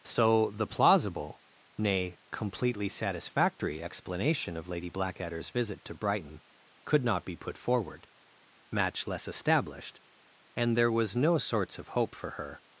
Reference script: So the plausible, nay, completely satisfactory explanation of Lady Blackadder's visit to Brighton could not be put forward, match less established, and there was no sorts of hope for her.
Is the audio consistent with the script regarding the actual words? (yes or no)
yes